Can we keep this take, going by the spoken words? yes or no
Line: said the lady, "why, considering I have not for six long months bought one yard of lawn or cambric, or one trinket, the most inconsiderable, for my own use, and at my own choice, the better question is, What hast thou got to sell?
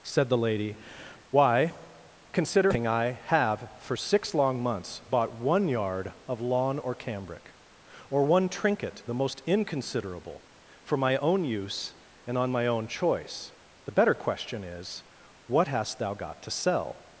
no